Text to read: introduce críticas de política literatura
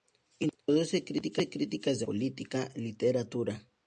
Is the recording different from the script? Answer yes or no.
no